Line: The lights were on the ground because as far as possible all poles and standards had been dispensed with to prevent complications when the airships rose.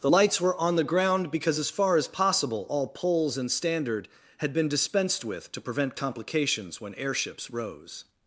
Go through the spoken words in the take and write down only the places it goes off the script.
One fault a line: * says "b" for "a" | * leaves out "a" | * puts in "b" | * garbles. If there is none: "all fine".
* says "standard" for "standards"
* leaves out "the"